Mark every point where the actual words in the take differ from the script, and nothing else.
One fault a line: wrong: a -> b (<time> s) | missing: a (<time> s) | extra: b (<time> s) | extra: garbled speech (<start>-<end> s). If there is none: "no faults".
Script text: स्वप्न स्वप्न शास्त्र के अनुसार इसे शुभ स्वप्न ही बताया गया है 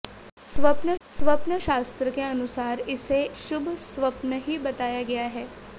no faults